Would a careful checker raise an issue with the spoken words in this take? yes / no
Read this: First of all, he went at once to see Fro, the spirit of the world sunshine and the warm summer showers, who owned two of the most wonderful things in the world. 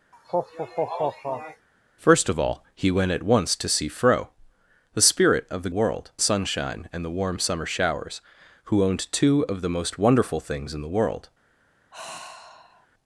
no